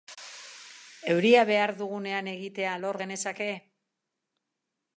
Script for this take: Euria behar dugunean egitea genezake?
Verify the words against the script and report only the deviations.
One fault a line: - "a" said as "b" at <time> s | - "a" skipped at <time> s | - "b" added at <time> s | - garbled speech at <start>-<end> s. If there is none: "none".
- "lor" added at 2.9 s